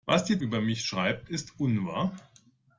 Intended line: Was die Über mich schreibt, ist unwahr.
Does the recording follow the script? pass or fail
pass